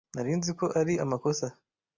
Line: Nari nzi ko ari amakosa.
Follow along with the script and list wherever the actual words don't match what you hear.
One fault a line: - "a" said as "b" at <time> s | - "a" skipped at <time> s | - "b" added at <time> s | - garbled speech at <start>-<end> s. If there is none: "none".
none